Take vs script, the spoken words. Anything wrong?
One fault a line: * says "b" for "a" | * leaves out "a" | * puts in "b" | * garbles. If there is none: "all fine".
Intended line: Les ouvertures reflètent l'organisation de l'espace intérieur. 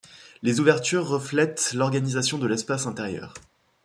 all fine